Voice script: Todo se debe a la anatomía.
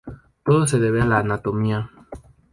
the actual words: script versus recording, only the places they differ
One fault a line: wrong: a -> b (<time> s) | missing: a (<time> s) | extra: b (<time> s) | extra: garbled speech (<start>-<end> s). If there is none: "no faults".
no faults